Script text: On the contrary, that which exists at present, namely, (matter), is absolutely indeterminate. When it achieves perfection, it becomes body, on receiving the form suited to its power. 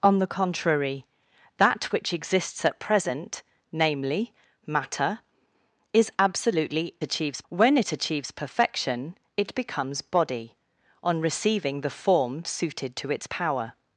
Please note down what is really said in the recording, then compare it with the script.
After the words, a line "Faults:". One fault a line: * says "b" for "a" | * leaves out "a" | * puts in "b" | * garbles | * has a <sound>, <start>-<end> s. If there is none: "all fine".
On the contrary, that which exists at present, namely, (matter), is absolutely achieves. When it achieves perfection, it becomes body, on receiving the form suited to its power.
Faults:
* says "achieves" for "indeterminate"